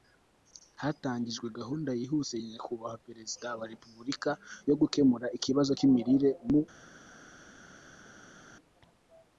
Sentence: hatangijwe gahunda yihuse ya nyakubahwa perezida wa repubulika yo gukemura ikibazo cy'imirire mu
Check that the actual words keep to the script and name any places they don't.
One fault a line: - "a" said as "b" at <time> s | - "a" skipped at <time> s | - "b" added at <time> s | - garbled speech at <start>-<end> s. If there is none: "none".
none